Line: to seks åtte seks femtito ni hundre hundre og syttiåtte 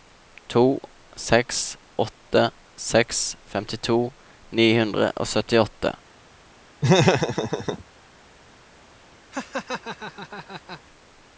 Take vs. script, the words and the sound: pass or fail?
fail